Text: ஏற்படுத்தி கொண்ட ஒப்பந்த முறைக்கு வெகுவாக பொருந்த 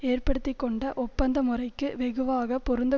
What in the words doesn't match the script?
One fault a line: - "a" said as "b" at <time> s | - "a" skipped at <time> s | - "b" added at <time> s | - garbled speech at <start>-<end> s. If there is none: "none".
none